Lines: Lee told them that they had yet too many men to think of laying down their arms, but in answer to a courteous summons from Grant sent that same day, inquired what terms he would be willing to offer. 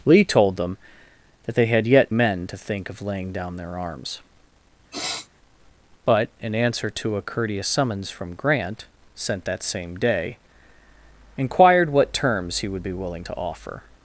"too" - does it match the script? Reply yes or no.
no